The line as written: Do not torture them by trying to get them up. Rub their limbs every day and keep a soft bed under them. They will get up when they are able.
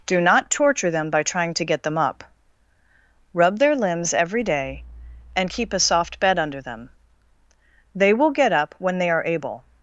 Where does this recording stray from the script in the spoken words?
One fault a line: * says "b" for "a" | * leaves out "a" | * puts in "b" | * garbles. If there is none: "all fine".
all fine